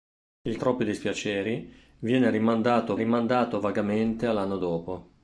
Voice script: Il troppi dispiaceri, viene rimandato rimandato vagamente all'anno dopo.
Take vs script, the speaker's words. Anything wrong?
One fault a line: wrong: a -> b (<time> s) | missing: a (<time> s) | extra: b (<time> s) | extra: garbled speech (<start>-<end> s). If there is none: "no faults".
no faults